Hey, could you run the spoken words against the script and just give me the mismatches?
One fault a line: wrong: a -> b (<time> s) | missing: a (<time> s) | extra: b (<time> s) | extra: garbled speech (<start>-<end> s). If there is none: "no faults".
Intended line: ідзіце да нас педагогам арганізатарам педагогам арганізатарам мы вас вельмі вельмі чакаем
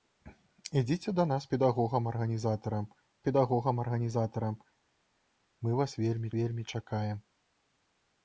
no faults